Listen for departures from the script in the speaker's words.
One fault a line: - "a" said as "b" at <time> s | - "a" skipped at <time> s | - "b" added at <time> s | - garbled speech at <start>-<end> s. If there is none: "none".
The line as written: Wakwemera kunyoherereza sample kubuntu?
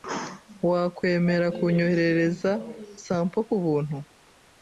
none